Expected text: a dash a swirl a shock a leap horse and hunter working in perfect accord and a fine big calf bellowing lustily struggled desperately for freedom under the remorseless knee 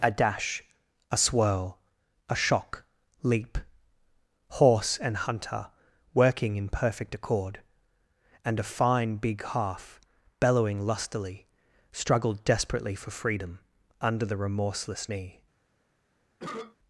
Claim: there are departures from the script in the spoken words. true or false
true